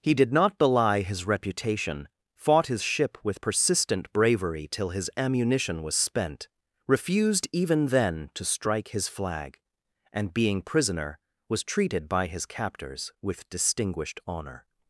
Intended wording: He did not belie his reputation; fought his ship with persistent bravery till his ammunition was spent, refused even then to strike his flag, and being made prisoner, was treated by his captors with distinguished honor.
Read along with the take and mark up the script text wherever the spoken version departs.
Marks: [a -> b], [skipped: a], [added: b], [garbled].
He did not belie his reputation; fought his ship with persistent bravery till his ammunition was spent, refused even then to strike his flag, and being [skipped: made] prisoner, was treated by his captors with distinguished honor.